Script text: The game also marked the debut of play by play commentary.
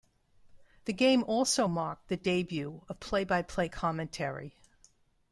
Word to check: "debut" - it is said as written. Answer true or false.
true